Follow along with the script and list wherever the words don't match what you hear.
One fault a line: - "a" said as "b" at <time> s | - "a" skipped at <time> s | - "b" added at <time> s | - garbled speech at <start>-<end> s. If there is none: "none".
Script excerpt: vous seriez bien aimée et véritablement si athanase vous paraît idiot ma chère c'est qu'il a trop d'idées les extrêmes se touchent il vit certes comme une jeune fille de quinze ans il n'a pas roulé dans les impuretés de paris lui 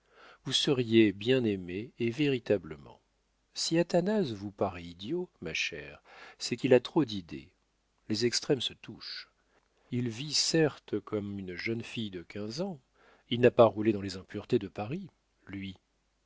none